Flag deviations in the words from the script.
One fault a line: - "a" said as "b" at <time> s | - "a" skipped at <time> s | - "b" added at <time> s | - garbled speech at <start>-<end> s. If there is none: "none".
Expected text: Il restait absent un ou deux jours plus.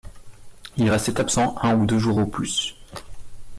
- "au" added at 2.2 s